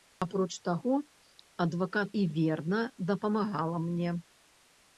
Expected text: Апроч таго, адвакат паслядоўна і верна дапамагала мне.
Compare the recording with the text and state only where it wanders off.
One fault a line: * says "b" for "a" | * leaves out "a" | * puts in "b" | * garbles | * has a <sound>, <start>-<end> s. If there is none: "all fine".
* leaves out "паслядоўна"